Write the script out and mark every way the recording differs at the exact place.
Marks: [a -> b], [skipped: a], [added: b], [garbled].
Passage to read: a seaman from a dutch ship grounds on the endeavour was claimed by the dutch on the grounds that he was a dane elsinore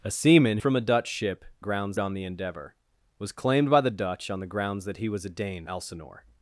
a seaman from a dutch ship grounds on the endeavour was claimed by the dutch on the grounds that he was a dane elsinore